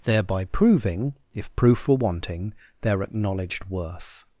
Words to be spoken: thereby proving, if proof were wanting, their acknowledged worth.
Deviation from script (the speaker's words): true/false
false